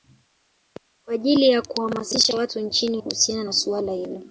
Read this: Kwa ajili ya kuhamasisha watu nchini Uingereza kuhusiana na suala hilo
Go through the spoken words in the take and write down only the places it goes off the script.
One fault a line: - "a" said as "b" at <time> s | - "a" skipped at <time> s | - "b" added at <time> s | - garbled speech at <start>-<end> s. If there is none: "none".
- "Uingereza" skipped at 3.0 s